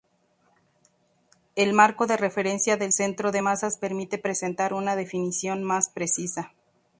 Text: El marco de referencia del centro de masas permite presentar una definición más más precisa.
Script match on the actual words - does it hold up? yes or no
no